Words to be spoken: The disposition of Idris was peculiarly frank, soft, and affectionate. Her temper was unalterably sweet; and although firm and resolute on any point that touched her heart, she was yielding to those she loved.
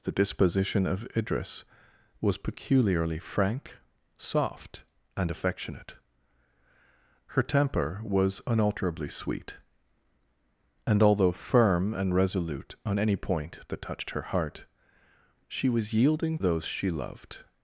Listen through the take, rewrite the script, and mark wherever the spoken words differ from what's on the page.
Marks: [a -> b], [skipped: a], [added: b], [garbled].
The disposition of Idris was peculiarly frank, soft, and affectionate. Her temper was unalterably sweet; and although firm and resolute on any point that touched her heart, she was yielding [skipped: to] those she loved.